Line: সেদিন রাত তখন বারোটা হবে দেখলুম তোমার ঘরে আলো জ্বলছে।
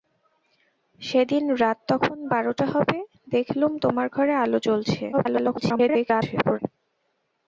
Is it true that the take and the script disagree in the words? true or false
true